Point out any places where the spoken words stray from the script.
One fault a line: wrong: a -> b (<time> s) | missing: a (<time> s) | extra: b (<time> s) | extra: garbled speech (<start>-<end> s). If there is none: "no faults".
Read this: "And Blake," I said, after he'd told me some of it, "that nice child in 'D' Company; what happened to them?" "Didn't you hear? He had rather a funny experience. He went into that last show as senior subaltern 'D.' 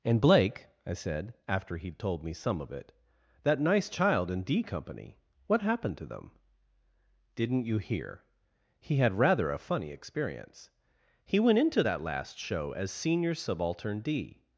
no faults